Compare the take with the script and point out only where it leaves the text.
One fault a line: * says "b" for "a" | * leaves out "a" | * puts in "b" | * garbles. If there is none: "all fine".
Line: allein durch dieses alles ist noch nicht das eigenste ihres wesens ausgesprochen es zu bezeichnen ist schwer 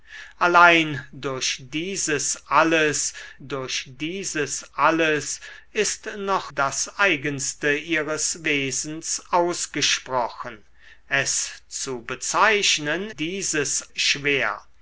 * puts in "durch dieses alles"
* leaves out "nicht"
* says "dieses" for "ist"